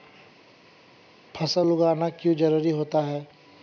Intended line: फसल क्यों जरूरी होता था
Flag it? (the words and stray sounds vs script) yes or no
yes